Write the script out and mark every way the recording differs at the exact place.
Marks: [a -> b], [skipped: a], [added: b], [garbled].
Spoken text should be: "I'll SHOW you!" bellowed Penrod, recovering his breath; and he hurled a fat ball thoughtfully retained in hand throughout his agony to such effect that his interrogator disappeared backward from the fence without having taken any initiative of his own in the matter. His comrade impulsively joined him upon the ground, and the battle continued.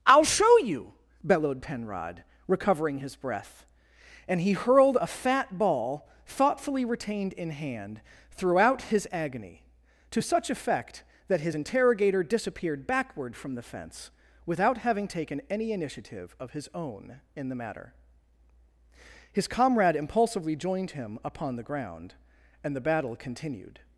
"I'll SHOW you!" bellowed Penrod, recovering his breath; and he hurled a fat ball thoughtfully retained in hand throughout his agony to such effect that his interrogator disappeared backward from the fence without having taken any initiative of his own in the matter. His comrade impulsively joined him upon the ground, and the battle continued.